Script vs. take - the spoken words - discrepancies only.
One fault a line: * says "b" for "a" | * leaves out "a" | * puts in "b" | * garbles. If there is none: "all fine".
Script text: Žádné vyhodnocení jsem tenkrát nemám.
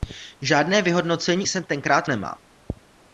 all fine